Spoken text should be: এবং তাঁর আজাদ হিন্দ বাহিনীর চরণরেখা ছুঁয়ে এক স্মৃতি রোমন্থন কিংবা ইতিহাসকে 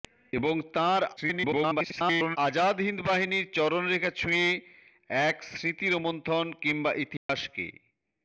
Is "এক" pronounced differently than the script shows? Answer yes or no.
no